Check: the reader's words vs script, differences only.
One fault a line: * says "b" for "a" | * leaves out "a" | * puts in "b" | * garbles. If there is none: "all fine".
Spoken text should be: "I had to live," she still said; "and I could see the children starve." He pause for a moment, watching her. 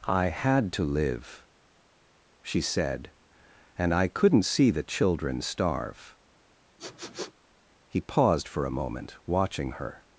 * leaves out "still"
* says "couldn't" for "could"
* says "paused" for "pause"